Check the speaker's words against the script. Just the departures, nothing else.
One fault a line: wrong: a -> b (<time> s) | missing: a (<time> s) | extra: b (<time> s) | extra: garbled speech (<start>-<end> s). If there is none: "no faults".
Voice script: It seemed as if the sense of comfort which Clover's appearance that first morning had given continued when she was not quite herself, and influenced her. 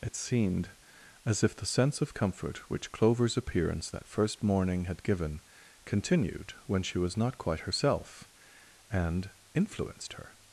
no faults